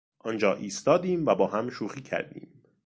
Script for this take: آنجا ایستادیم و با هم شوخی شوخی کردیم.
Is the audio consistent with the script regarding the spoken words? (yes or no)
no